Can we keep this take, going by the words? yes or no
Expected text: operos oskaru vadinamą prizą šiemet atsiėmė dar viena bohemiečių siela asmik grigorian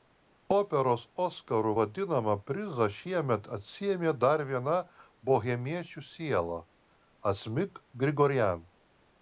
yes